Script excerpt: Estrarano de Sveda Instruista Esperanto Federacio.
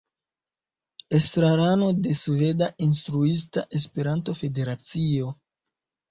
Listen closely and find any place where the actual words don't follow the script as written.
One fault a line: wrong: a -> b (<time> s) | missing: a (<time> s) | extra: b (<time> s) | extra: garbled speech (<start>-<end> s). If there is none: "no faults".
no faults